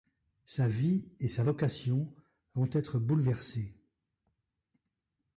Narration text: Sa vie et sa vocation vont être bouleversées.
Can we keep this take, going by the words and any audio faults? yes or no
yes